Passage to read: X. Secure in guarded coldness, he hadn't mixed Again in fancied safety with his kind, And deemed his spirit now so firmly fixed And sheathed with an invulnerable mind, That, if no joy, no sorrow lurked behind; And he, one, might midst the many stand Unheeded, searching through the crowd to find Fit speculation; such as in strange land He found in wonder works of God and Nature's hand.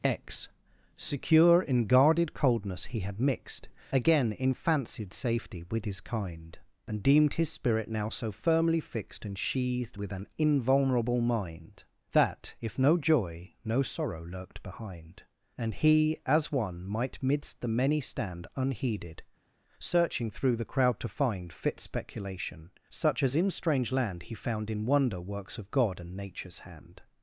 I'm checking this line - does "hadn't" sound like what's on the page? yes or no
no